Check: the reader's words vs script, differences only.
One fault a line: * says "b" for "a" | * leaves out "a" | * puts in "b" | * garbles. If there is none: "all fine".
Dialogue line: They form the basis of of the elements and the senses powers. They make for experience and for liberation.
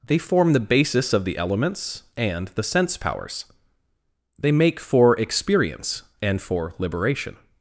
* leaves out "of"
* says "sense" for "senses"